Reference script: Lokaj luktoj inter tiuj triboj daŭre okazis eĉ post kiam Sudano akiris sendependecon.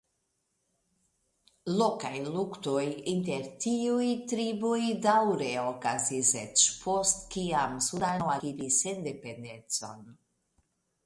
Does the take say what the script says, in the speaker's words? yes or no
yes